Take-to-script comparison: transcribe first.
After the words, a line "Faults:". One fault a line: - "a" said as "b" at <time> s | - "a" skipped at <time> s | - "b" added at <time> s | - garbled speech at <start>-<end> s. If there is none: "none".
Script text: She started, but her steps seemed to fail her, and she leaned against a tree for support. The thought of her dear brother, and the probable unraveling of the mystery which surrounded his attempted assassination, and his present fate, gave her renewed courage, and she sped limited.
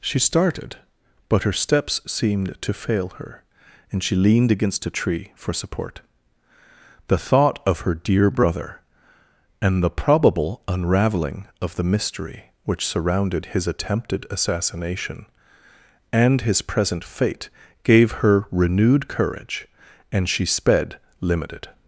She started, but her steps seemed to fail her, and she leaned against a tree for support. The thought of her dear brother, and the probable unraveling of the mystery which surrounded his attempted assassination, and his present fate, gave her renewed courage, and she sped limited.
Faults:
none